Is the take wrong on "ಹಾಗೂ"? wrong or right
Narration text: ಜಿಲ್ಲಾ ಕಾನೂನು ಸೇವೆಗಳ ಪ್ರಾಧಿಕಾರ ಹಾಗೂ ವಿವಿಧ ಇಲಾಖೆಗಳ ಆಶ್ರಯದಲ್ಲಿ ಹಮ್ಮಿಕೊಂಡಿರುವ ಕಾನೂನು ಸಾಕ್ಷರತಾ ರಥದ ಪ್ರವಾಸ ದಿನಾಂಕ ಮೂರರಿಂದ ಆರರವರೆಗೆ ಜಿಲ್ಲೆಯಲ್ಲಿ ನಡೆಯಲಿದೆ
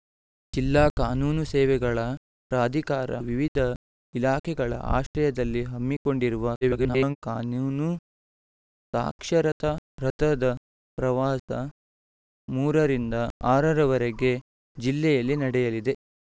wrong